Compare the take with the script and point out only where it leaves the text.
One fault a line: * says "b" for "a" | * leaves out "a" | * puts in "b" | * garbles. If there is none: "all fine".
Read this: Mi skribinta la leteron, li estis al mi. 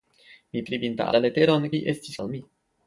all fine